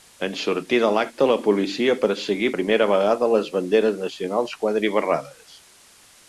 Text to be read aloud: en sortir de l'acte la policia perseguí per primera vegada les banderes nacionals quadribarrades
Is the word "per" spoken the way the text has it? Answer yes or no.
no